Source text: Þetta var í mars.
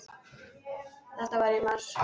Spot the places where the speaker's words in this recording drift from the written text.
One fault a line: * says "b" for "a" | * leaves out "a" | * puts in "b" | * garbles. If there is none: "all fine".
all fine